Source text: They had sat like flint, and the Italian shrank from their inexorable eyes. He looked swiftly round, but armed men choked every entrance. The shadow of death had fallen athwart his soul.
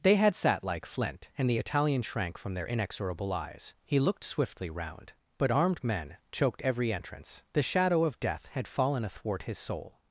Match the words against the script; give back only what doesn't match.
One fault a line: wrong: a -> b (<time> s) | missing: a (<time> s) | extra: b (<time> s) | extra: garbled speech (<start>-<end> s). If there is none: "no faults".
no faults